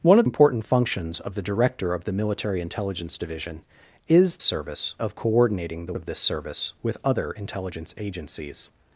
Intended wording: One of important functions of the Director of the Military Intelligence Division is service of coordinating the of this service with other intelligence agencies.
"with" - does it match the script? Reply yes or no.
yes